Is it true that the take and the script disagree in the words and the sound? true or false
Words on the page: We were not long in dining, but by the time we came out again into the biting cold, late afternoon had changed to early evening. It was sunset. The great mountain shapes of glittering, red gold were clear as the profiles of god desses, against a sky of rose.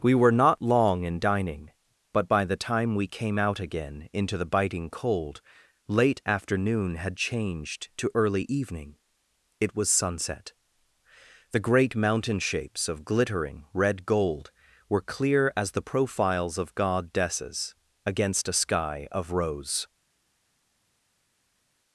false